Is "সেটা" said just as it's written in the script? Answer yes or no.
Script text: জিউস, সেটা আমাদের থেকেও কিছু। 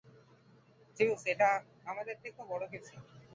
no